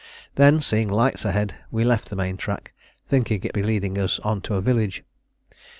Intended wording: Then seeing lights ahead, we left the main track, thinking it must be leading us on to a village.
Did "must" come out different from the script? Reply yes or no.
yes